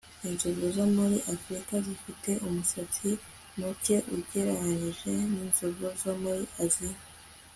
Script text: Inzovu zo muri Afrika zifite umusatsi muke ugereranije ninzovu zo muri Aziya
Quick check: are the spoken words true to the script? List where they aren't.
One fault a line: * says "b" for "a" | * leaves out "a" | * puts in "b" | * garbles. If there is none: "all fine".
all fine